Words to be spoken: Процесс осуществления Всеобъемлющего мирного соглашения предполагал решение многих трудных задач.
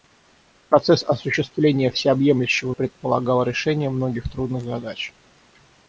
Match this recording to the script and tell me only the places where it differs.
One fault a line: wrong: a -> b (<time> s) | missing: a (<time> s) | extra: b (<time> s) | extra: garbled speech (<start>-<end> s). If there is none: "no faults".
missing: мирного соглашения (2.7 s)